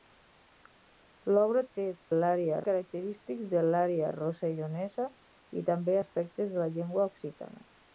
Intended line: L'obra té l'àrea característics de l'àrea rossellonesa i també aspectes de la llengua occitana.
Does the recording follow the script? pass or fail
pass